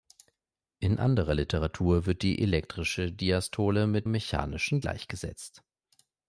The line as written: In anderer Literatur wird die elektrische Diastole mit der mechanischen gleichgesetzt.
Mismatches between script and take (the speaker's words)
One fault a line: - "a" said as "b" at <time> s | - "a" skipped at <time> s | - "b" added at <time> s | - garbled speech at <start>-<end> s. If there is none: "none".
- "der" skipped at 4.1 s